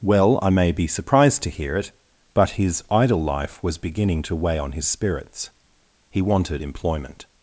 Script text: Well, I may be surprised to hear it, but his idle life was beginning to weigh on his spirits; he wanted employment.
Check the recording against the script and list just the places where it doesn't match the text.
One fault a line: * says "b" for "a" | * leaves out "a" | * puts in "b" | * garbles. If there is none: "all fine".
all fine